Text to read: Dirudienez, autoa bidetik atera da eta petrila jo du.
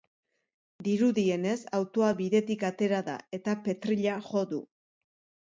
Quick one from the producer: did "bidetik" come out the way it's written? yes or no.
yes